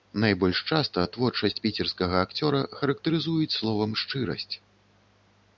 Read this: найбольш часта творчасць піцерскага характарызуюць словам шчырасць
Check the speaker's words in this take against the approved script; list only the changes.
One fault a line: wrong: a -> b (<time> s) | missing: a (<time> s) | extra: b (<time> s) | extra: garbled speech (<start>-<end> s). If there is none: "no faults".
extra: акцёра (2.3 s)